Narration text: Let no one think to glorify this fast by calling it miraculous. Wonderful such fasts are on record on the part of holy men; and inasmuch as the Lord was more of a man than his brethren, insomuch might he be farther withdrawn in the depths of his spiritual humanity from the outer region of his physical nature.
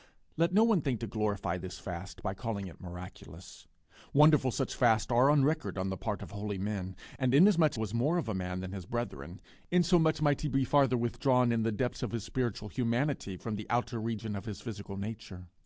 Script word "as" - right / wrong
wrong